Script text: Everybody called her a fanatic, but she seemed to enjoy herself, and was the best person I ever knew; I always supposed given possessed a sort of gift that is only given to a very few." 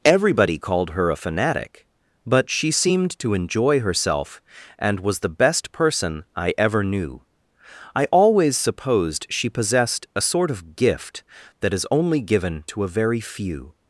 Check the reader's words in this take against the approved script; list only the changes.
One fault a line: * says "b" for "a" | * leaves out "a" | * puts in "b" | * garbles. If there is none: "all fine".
* says "she" for "given"